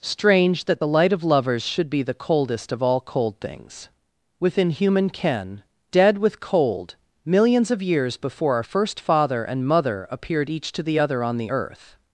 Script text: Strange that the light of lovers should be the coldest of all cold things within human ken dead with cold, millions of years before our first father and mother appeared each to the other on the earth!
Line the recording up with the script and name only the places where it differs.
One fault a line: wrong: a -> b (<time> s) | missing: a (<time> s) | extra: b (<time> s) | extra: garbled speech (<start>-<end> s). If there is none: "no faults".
no faults